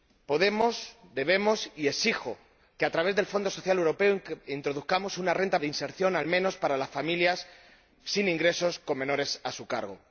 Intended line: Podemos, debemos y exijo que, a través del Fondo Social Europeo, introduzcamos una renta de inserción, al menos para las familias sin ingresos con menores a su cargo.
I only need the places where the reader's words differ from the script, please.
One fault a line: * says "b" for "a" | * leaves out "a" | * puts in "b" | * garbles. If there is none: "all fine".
all fine